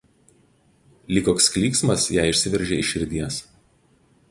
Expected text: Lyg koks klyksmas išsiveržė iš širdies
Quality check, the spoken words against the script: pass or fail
fail